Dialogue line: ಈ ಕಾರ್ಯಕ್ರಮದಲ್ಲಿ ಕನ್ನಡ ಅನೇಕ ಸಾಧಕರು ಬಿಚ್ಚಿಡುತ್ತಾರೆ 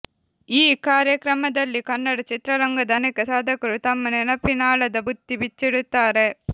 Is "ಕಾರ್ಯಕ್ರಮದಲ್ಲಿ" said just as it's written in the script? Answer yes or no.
yes